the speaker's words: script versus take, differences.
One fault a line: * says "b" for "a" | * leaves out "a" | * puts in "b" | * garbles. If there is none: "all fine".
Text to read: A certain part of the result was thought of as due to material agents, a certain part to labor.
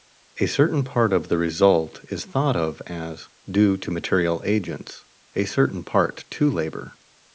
* says "is" for "was"